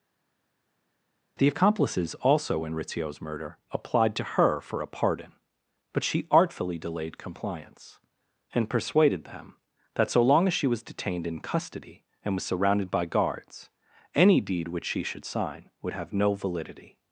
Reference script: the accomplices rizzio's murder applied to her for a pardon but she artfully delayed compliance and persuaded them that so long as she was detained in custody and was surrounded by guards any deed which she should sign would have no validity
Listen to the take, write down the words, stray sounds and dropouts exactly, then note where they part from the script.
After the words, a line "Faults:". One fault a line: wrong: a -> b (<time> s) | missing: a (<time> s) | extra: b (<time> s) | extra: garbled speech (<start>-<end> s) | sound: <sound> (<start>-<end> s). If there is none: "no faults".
the accomplices also in rizzio's murder applied to her for a pardon but she artfully delayed compliance and persuaded them that so long as she was detained in custody and was surrounded by guards any deed which she should sign would have no validity
Faults:
extra: also in (2.2 s)